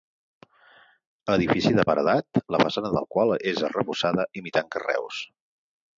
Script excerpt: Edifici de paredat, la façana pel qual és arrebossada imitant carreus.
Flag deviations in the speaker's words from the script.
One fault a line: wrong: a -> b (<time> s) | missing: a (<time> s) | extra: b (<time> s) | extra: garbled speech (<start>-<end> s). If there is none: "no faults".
wrong: pel -> del (3.0 s)